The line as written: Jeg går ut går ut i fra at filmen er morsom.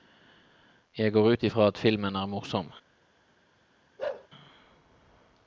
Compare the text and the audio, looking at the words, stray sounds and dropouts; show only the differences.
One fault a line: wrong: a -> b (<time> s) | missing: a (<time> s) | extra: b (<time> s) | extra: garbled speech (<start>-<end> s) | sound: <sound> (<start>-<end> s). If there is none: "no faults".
missing: går ut (1.4 s)
sound: bark (4.0-4.3 s)